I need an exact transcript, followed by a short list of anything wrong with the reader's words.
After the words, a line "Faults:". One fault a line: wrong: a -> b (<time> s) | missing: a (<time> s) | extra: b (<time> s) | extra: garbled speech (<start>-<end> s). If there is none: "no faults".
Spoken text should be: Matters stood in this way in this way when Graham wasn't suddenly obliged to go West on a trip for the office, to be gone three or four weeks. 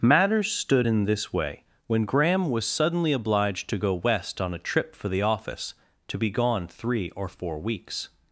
Matters stood in this way when Graham was suddenly obliged to go West on a trip for the office, to be gone three or four weeks.
Faults:
missing: in this way (1.6 s)
wrong: wasn't -> was (2.5 s)